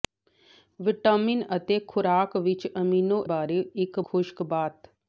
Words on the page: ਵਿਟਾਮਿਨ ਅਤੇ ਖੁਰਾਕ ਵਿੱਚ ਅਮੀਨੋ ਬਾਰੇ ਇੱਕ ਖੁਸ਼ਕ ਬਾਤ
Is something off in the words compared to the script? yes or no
no